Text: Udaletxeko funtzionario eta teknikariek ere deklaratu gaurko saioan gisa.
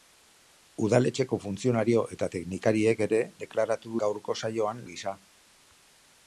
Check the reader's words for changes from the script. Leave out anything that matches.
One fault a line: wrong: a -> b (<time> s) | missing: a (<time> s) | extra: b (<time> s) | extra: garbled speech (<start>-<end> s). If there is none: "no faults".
no faults